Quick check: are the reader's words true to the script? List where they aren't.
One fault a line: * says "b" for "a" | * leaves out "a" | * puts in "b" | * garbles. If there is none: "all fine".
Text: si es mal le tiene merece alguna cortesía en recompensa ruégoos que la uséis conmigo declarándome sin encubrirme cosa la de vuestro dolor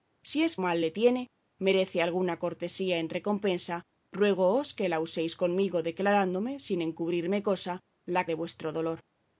all fine